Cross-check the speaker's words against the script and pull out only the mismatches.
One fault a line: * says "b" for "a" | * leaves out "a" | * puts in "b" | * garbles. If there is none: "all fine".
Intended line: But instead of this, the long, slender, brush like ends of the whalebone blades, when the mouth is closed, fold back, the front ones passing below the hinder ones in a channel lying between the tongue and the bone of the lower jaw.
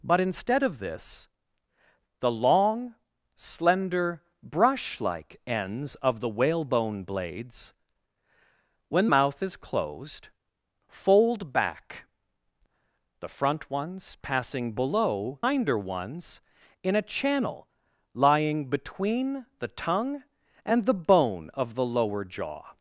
* leaves out "the"
* leaves out "the"